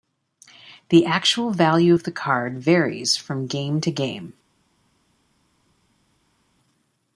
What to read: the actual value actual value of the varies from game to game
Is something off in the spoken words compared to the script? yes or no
yes